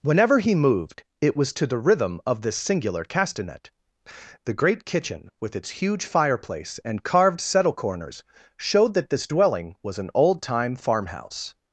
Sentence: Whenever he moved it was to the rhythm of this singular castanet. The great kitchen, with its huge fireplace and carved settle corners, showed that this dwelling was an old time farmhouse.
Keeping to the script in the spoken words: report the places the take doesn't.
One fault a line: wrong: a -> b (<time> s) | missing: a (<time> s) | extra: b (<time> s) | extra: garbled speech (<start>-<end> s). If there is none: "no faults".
no faults